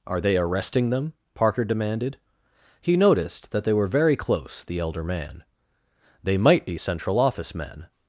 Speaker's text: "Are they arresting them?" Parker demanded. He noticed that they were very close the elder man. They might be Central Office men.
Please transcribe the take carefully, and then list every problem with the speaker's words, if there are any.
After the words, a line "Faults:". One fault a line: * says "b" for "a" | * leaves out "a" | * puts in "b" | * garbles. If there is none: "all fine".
"Are they arresting them?" Parker demanded. He noticed that they were very close the elder man. They might be Central Office men.
Faults:
all fine